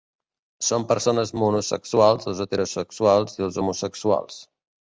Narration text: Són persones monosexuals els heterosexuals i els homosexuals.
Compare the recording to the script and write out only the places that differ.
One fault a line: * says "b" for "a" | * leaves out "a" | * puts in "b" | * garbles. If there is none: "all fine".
all fine